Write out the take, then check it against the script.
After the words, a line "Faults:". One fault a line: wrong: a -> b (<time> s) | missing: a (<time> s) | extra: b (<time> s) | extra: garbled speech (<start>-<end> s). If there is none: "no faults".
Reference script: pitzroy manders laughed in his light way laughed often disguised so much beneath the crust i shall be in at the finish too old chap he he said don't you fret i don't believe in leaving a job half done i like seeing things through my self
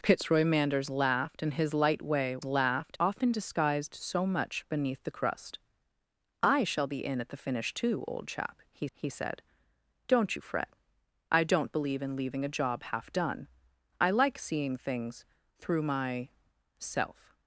pitzroy manders laughed in his light way laughed often disguised so much beneath the crust i shall be in at the finish too old chap he he said don't you fret i don't believe in leaving a job half done i like seeing things through my self
Faults:
no faults